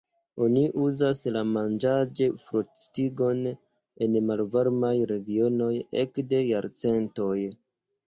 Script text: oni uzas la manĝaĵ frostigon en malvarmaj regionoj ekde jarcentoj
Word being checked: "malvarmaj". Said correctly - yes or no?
yes